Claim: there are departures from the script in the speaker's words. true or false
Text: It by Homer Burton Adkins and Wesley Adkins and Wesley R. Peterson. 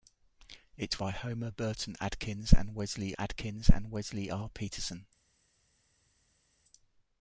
false